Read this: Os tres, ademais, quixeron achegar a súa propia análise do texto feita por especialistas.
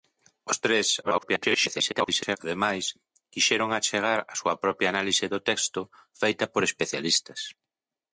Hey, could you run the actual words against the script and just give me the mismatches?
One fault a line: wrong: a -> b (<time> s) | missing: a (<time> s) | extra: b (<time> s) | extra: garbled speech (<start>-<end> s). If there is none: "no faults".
extra: garbled speech (1.0-2.4 s)